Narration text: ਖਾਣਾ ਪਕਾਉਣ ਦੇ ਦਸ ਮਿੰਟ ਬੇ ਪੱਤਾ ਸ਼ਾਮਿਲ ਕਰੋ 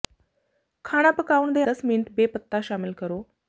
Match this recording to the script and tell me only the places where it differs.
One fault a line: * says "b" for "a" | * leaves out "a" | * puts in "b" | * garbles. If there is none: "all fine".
all fine